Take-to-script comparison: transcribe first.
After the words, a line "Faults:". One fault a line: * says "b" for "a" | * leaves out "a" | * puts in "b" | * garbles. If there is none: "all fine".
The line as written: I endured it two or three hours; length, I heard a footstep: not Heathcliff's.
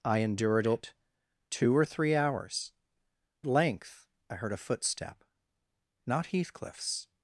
I endured it two or three hours; length, I heard a footstep: not Heathcliff's.
Faults:
all fine